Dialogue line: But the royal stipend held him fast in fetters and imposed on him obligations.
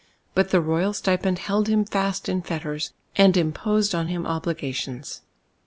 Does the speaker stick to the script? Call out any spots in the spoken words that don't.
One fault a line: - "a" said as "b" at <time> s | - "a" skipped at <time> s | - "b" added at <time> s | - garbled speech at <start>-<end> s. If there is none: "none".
none